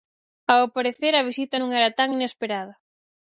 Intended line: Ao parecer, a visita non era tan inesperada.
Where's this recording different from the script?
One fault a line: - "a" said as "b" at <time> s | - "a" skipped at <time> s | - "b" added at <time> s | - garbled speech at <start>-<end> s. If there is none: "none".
none